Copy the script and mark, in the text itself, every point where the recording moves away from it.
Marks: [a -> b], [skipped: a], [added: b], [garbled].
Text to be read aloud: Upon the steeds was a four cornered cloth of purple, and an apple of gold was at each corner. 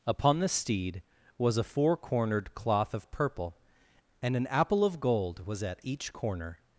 Upon the [steeds -> steed] was a four cornered cloth of purple, and an apple of gold was at each corner.